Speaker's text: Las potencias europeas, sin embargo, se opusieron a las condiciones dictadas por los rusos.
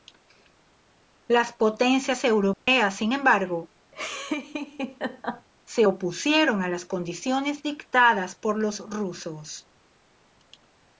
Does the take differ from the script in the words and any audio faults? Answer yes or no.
yes